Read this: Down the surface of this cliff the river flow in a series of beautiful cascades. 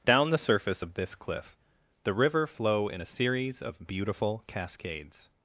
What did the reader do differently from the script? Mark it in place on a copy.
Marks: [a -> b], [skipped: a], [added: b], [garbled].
Down the surface of this cliff the river flow in a series of beautiful cascades.